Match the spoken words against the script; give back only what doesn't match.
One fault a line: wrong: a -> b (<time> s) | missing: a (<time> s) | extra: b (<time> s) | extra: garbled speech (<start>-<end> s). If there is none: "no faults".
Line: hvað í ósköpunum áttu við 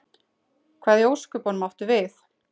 no faults